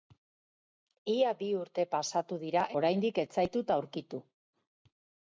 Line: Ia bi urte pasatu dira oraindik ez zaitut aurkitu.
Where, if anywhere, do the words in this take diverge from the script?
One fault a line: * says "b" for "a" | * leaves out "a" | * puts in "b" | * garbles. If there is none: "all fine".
all fine